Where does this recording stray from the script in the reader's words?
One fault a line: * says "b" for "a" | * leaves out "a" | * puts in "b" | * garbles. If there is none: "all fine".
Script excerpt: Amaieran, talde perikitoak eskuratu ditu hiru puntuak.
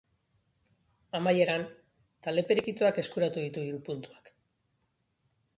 all fine